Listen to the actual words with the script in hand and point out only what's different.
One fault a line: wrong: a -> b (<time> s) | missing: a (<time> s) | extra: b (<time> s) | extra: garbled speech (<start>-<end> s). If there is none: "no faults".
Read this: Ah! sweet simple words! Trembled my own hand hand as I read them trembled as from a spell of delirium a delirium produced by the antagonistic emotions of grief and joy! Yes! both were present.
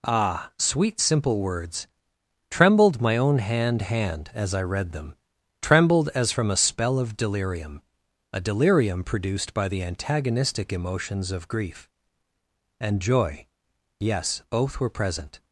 no faults